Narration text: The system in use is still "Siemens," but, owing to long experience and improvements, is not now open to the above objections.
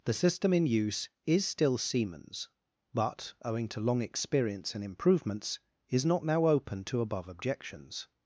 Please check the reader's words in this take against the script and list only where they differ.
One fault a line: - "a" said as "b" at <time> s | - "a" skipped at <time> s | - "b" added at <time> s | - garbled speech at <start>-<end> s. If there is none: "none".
- "the" skipped at 7.0 s